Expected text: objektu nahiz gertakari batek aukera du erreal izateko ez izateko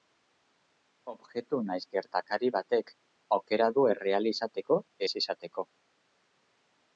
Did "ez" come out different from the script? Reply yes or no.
no